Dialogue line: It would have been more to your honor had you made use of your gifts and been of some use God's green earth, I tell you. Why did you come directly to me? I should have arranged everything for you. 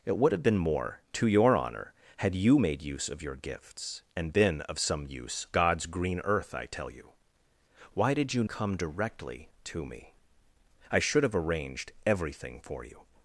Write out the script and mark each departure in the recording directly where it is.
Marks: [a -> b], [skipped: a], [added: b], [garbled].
It would have been more to your honor had you made use of your gifts and been of some use God's green earth, I tell you. Why did you come directly to me? I should have arranged everything for you.